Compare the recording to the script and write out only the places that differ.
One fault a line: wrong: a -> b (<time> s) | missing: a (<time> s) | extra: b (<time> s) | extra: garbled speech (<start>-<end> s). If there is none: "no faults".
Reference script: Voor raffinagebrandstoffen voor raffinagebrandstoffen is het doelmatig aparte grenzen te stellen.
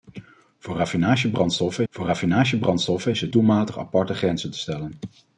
no faults